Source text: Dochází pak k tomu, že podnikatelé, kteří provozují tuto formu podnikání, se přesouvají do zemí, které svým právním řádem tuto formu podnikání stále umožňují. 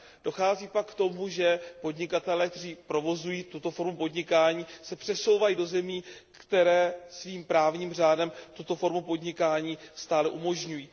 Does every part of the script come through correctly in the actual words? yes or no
yes